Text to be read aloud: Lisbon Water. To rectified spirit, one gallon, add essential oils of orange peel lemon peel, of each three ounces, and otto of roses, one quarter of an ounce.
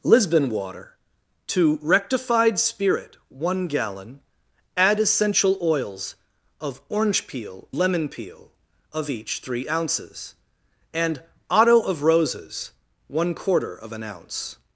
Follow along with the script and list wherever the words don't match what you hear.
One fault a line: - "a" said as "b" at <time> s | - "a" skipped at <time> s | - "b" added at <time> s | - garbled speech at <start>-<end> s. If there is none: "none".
none